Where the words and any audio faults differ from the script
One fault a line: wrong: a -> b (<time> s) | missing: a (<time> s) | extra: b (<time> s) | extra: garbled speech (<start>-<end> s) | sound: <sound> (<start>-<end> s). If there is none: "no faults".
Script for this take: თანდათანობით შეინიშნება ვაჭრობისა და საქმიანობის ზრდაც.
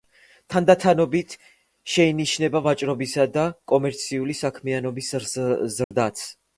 extra: კომერციული (3.8 s)
sound: dropout (5.8-5.9 s)